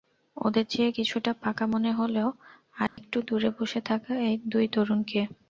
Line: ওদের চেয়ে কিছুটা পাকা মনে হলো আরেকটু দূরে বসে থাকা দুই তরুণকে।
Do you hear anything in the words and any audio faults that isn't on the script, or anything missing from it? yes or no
yes